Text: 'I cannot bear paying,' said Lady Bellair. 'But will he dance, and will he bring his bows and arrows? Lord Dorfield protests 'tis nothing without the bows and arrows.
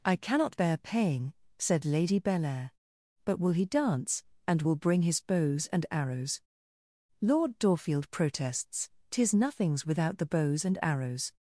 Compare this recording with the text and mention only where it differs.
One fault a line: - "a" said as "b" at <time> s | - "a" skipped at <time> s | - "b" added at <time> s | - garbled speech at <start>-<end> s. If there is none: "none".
- "he" skipped at 4.8 s
- "nothing" said as "nothings" at 9.3 s